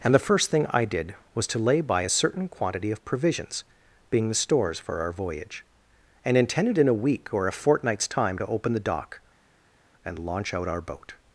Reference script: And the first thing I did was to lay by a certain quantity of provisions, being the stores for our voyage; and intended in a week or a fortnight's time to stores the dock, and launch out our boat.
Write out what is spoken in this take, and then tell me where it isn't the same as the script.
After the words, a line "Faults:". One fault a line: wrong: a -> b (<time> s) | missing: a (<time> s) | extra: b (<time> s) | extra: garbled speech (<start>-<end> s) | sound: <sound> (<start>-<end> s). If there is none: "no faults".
And the first thing I did was to lay by a certain quantity of provisions, being the stores for our voyage; and intended in a week or a fortnight's time to open the dock, and launch out our boat.
Faults:
wrong: stores -> open (8.5 s)